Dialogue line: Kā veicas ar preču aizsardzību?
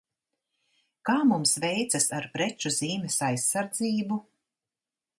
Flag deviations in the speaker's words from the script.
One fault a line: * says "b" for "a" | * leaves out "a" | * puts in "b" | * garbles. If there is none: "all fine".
* puts in "mums"
* puts in "zīmes"